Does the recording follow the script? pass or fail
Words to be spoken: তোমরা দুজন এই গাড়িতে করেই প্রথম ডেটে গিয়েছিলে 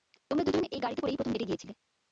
pass